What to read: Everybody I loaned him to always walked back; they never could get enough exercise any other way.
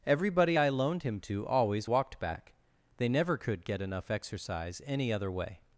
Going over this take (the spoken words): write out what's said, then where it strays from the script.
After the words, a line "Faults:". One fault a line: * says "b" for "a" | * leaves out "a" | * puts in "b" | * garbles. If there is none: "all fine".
Everybody I loaned him to always walked back; they never could get enough exercise any other way.
Faults:
all fine